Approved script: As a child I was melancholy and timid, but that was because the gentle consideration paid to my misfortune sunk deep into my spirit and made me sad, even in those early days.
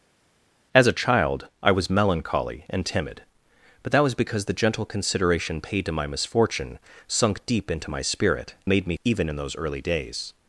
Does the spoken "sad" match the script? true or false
false